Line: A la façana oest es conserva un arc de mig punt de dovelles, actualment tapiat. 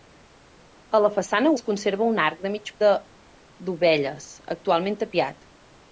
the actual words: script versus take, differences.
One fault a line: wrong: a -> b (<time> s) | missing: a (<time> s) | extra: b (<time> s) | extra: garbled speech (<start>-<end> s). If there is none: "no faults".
missing: oest (1.5 s)
missing: punt (2.7 s)